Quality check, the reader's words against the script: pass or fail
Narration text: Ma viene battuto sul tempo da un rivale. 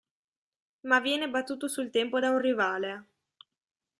pass